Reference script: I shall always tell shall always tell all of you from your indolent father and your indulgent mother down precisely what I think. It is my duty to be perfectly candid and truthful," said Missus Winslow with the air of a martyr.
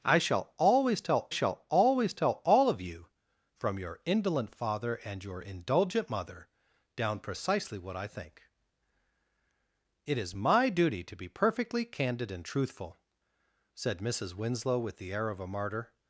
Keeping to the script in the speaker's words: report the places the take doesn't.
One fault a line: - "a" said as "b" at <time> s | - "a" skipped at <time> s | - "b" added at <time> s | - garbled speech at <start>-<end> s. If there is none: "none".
none